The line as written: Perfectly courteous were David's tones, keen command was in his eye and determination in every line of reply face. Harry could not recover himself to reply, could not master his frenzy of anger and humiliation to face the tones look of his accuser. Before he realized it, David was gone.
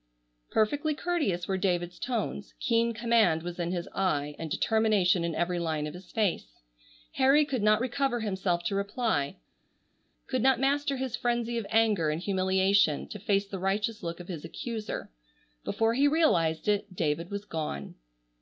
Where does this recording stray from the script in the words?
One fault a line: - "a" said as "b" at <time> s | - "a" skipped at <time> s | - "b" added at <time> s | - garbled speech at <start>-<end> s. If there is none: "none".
- "reply" said as "his" at 5.9 s
- "tones" said as "righteous" at 13.6 s